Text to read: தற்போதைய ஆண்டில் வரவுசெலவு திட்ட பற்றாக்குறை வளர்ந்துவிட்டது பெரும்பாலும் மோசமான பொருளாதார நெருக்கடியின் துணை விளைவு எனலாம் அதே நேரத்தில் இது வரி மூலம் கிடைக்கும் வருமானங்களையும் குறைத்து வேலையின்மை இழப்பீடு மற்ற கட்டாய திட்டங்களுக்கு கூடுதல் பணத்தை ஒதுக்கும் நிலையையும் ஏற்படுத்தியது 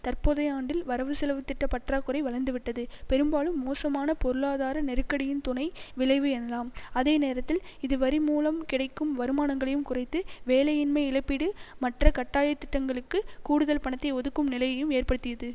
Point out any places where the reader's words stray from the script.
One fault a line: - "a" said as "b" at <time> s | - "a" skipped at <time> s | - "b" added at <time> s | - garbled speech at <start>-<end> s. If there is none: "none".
none